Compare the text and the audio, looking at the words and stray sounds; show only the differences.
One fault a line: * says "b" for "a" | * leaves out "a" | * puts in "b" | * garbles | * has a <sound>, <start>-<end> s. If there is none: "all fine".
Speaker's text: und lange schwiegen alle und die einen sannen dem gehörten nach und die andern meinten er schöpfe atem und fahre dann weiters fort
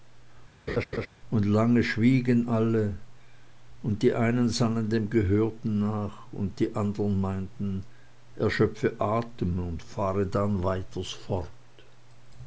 * has a laugh, 0.7-1.1 s